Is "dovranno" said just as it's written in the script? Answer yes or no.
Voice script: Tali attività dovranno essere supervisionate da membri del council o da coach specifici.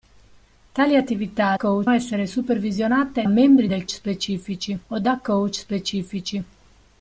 no